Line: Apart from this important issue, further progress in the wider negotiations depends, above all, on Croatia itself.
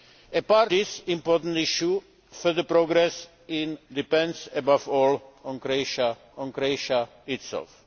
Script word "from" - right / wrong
wrong